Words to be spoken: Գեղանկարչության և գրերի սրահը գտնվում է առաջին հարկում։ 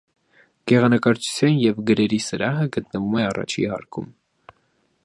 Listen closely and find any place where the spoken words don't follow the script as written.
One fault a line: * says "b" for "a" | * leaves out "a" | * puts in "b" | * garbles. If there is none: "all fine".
all fine